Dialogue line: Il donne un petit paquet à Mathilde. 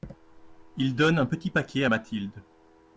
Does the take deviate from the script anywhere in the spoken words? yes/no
no